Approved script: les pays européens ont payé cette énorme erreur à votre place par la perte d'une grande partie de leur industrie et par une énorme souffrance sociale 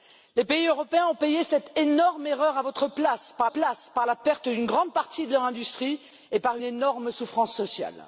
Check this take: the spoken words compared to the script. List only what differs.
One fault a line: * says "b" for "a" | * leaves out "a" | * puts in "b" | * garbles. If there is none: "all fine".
* puts in "place par"
* leaves out "une"